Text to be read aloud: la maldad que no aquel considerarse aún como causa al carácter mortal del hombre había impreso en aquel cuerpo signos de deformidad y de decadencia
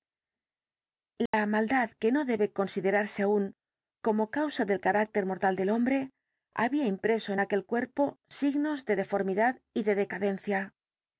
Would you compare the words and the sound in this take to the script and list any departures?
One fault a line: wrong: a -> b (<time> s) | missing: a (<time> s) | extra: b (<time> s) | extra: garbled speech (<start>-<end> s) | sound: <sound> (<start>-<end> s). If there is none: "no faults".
sound: dropout (1.3-1.3 s)
wrong: aquel -> debe (2.3 s)
wrong: al -> del (4.7 s)